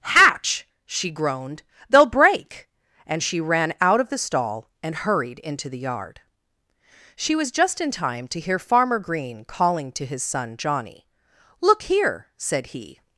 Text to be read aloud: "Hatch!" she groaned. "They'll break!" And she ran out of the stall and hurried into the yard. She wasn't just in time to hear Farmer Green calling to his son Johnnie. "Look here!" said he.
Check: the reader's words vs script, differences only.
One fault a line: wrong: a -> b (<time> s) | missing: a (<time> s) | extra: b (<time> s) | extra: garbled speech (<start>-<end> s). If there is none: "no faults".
wrong: wasn't -> was (7.3 s)